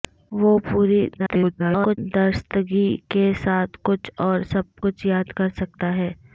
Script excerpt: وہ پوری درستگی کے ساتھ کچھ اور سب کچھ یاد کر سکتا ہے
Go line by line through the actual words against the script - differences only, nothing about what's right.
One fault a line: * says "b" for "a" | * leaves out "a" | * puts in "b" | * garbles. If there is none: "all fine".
* garbles